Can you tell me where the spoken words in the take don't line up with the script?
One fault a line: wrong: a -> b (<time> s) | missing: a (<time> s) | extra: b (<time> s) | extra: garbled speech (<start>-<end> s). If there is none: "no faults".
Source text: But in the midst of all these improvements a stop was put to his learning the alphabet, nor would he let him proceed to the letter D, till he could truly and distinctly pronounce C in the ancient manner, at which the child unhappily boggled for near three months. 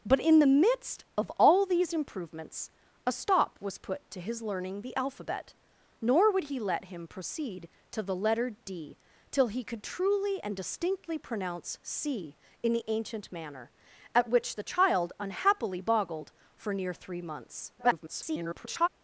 extra: garbled speech (17.8-18.9 s)